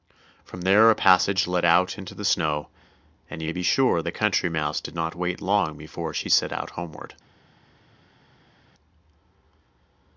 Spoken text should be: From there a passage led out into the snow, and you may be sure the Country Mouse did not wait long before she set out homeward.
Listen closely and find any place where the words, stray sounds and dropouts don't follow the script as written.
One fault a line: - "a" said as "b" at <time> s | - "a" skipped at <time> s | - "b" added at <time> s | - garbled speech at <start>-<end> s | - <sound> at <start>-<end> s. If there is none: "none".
none